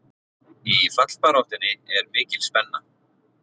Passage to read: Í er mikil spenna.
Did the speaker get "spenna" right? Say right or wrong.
right